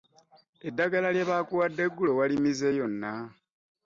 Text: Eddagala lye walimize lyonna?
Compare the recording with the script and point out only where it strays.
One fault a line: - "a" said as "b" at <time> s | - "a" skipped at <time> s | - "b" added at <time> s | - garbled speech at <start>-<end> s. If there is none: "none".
- "baakuwadde eggulo" added at 1.3 s